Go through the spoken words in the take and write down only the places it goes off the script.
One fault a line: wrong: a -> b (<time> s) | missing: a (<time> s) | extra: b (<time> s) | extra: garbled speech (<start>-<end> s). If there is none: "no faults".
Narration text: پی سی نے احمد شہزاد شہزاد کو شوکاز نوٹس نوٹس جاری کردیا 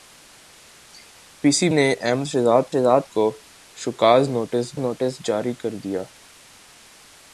no faults